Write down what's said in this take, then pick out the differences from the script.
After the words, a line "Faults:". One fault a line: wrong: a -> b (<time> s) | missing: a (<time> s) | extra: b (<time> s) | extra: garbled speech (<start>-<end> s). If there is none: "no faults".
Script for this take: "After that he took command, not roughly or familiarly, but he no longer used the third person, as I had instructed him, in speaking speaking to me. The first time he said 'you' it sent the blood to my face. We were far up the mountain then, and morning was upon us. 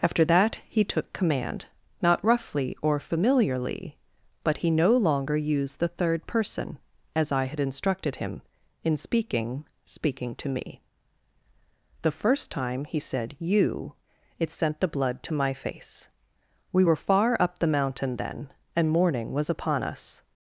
"After that he took command, not roughly or familiarly, but he no longer used the third person, as I had instructed him, in speaking speaking to me. The first time he said 'you' it sent the blood to my face. We were far up the mountain then, and morning was upon us.
Faults:
no faults